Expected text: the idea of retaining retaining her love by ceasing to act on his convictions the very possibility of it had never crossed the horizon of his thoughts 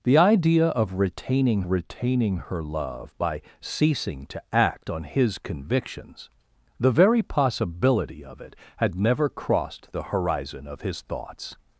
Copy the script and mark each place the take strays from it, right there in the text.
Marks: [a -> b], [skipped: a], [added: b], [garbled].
the idea of retaining retaining her love by ceasing to act on his convictions the very possibility of it had never crossed the horizon of his thoughts